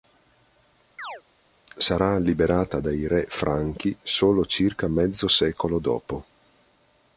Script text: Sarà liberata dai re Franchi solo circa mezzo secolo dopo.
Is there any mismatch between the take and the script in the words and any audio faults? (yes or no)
yes